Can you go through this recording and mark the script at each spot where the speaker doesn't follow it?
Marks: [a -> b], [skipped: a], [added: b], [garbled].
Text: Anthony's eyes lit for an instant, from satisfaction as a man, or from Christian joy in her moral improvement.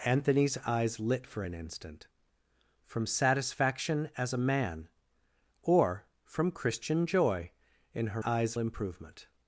Anthony's eyes lit for an instant, from satisfaction as a man, or from Christian joy in her [moral -> eyes] improvement.